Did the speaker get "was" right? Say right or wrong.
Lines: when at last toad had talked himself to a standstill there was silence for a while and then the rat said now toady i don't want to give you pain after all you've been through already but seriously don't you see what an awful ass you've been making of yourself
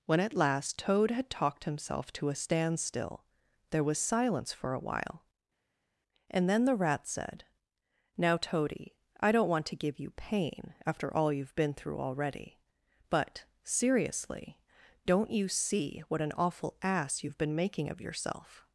right